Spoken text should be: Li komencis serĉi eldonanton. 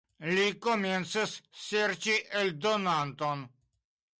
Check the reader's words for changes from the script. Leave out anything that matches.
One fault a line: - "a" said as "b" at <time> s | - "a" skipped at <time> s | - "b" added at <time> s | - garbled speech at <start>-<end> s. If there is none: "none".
none